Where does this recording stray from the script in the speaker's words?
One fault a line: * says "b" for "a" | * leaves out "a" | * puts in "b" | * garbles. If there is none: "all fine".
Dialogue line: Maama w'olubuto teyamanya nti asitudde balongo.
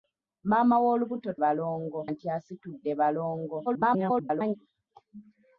* says "balongo" for "teyamanya"
* garbles